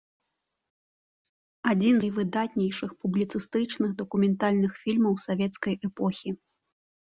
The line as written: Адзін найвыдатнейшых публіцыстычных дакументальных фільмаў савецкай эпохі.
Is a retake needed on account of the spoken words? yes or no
no